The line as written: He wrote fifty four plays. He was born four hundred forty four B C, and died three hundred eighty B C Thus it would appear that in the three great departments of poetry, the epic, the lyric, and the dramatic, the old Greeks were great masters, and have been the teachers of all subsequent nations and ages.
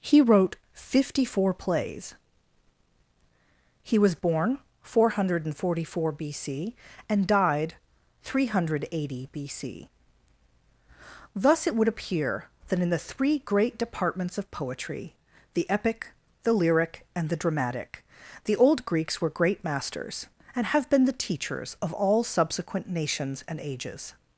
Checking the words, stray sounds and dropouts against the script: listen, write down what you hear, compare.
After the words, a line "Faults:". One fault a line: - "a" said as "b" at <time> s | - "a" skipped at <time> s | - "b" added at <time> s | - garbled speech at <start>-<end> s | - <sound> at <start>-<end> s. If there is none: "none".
He wrote fifty four plays. He was born four hundred forty four B C, and died three hundred eighty B C Thus it would appear that in the three great departments of poetry, the epic, the lyric, and the dramatic, the old Greeks were great masters, and have been the teachers of all subsequent nations and ages.
Faults:
none